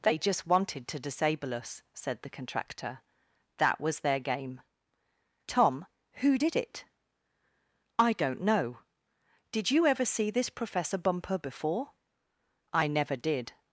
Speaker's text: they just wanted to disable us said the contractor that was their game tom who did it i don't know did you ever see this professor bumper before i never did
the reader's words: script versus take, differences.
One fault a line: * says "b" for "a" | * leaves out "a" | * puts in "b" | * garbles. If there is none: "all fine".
all fine